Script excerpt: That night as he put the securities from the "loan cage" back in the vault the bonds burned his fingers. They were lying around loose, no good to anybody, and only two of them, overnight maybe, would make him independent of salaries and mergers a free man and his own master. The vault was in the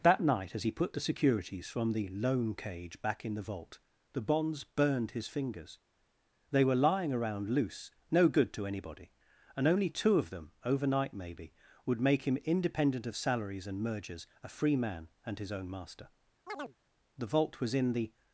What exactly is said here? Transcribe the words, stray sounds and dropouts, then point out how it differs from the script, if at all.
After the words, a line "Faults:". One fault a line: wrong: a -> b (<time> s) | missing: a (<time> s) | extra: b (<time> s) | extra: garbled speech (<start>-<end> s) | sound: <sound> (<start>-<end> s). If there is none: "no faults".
That night as he put the securities from the "loan cage" back in the vault the bonds burned his fingers. They were lying around loose, no good to anybody, and only two of them, overnight maybe, would make him independent of salaries and mergers a free man and his own master. The vault was in the
Faults:
sound: chirp (16.5-16.8 s)